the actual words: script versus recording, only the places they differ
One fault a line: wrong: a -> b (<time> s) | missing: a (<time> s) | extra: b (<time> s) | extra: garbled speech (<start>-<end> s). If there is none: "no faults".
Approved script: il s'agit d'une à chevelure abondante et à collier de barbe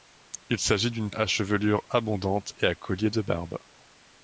no faults